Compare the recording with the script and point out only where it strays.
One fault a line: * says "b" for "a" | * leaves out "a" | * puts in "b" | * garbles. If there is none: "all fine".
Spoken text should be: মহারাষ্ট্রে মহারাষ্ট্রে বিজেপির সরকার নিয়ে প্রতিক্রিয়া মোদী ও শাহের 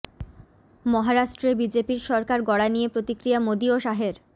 * leaves out "মহারাষ্ট্রে"
* puts in "গড়া"